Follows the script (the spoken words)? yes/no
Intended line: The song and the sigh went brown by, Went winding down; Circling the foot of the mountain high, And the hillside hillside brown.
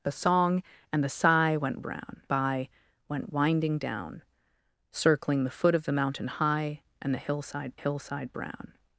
yes